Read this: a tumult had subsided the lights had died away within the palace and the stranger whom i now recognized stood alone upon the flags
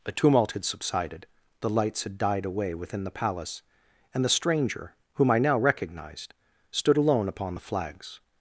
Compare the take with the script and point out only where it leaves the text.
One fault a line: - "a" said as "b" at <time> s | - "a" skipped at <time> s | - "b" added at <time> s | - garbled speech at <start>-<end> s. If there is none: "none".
none